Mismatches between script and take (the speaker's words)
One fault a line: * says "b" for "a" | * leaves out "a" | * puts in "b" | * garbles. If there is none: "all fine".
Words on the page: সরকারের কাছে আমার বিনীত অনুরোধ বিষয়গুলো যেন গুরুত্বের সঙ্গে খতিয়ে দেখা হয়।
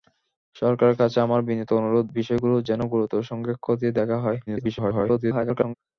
* garbles